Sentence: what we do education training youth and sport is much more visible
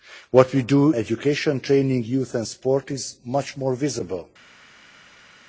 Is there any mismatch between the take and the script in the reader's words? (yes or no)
no